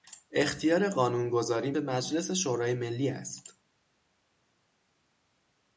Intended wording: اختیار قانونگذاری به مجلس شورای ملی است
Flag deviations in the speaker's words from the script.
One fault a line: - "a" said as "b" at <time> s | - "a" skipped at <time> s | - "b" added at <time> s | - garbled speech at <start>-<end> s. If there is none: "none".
none